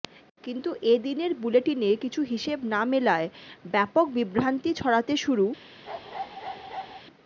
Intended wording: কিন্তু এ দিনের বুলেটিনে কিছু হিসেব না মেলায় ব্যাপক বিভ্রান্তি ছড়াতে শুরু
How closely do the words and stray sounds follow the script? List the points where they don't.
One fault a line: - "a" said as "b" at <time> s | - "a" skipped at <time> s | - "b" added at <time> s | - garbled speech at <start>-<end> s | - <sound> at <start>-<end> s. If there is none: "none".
- bark at 5.9-7.0 s